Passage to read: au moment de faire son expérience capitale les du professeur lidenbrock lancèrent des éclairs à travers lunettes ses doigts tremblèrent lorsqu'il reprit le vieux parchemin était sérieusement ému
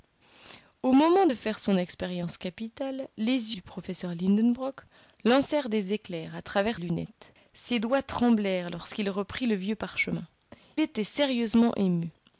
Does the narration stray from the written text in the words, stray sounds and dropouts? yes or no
no